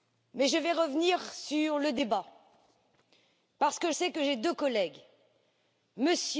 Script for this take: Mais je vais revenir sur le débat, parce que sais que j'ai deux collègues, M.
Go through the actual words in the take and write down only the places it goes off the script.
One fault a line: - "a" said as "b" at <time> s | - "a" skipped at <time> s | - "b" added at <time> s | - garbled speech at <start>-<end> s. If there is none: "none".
none